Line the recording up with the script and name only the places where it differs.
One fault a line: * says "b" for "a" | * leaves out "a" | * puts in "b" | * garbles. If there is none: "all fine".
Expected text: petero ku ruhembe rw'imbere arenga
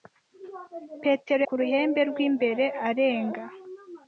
all fine